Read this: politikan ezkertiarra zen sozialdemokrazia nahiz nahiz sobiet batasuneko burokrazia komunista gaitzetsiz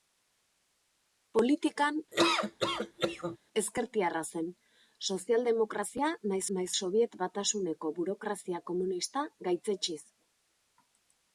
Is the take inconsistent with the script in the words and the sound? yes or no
yes